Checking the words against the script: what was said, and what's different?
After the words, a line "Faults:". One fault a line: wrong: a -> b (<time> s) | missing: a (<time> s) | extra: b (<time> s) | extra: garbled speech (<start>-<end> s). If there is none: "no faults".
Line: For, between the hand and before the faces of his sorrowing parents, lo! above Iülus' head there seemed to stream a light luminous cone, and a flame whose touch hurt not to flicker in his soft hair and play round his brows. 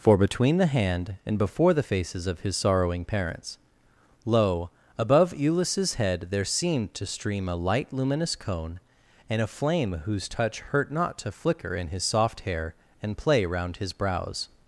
For, between the hand and before the faces of his sorrowing parents, lo! above Iülus' head there seemed to stream a light luminous cone, and a flame whose touch hurt not to flicker in his soft hair and play round his brows.
Faults:
no faults